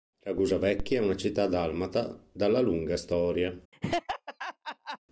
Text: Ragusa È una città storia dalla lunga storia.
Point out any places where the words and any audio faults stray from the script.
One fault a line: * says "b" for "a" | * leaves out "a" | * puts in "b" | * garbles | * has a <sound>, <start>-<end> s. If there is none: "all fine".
* puts in "Vecchia"
* says "dalmata" for "storia"
* has a laugh, 3.7-5.0 s